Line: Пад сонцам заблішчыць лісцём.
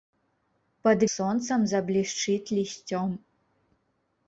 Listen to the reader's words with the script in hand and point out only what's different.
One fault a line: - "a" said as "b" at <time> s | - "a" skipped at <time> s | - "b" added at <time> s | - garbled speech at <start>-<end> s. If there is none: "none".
none